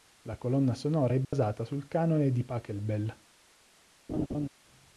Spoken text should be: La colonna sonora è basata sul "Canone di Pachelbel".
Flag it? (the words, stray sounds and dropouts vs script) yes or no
yes